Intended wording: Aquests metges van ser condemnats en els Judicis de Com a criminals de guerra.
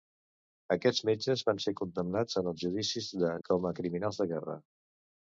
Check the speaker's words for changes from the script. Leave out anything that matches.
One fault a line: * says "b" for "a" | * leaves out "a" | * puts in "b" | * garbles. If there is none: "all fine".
all fine